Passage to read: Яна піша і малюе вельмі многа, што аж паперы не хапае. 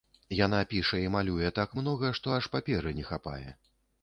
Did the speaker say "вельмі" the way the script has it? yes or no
no